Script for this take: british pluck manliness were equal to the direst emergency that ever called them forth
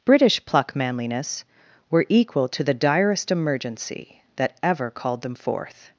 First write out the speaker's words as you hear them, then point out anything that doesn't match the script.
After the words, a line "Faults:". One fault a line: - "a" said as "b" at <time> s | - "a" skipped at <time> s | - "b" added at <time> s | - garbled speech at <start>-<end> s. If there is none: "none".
british pluck manliness were equal to the direst emergency that ever called them forth
Faults:
none